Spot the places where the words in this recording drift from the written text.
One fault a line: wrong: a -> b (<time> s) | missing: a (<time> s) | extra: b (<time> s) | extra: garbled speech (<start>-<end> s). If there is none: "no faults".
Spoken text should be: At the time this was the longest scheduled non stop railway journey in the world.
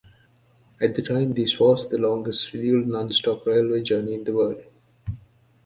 no faults